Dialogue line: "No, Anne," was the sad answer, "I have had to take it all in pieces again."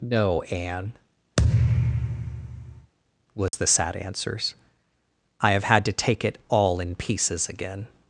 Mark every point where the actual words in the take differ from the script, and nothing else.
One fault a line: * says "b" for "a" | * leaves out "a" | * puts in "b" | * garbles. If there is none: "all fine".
* says "answers" for "answer"